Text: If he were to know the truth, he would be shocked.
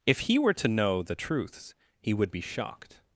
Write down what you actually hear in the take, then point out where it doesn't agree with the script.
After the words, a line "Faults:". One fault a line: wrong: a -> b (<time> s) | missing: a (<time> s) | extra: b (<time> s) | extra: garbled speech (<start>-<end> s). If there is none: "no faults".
If he were to know the truths, he would be shocked.
Faults:
wrong: truth -> truths (1.1 s)